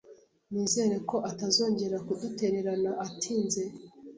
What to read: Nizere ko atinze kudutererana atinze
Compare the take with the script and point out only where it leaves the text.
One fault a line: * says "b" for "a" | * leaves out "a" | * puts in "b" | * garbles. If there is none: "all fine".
* says "atazongera" for "atinze"